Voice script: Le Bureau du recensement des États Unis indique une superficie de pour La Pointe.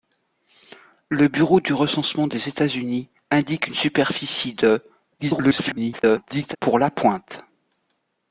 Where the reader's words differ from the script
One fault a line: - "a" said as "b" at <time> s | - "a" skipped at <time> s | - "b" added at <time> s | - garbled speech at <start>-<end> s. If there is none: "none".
- garbled speech at 5.2-6.6 s